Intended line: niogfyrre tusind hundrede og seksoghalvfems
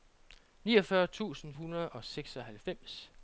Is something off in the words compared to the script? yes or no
no